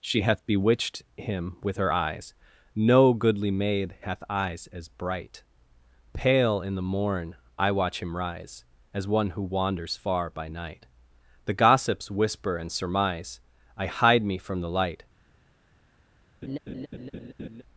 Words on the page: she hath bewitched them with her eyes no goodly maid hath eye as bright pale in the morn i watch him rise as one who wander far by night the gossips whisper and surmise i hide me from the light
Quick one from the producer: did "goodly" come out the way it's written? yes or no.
yes